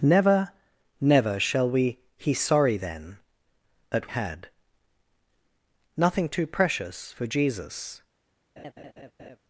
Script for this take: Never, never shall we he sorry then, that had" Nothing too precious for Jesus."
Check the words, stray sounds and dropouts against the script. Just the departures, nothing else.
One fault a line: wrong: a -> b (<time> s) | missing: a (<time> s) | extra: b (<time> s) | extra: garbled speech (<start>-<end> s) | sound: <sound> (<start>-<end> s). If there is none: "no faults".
sound: laugh (8.6-9.4 s)